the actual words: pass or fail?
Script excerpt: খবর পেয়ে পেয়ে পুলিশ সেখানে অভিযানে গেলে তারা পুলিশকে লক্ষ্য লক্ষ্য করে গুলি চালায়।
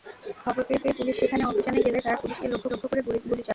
pass